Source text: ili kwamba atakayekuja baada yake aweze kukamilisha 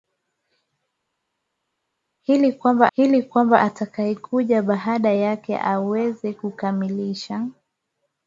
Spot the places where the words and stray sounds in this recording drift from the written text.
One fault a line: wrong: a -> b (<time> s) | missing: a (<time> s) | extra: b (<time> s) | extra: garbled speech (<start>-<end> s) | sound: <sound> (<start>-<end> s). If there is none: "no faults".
extra: ili kwamba (3.0 s)